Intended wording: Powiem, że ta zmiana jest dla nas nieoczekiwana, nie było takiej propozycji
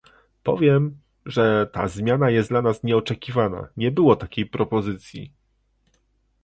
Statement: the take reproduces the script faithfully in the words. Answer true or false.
true